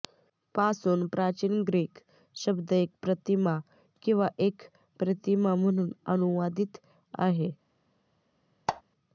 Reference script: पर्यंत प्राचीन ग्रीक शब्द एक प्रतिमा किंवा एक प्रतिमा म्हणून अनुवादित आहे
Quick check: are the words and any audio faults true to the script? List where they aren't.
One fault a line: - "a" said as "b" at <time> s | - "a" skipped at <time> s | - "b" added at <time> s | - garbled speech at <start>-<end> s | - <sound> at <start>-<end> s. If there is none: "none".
- "पर्यंत" said as "पासून" at 0.6 s
- squeak at 8.7-8.8 s